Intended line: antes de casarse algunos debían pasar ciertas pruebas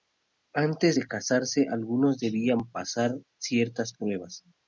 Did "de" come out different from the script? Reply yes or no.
no